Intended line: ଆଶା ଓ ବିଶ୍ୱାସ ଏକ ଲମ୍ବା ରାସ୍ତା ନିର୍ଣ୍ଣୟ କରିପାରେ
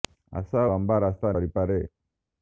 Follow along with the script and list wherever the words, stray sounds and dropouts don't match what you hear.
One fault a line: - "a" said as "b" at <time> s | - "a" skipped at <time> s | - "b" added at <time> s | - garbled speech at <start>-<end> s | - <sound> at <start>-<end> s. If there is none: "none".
- "ଓ ବିଶ୍ୱାସ ଏକ" skipped at 0.6 s
- "ନିର୍ଣ୍ଣୟ" skipped at 1.4 s